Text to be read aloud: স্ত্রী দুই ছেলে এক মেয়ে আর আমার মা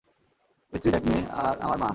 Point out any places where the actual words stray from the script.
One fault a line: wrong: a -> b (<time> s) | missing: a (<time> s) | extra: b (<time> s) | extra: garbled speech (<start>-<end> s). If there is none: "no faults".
missing: দুই ছেলে (0.9 s)